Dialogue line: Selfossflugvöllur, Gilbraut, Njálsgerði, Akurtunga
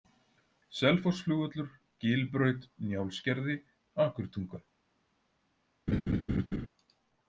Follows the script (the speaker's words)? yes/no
yes